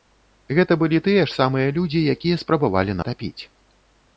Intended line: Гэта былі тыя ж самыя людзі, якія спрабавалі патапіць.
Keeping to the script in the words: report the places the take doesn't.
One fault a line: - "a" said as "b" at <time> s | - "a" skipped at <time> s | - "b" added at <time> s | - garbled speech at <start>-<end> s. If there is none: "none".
none